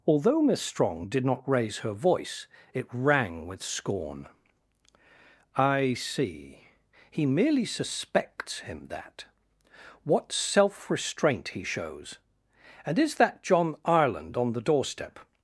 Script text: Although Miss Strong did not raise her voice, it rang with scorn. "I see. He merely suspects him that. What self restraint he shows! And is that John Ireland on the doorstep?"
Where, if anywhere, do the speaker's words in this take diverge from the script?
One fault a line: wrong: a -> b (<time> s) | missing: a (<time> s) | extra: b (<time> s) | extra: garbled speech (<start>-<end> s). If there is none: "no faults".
no faults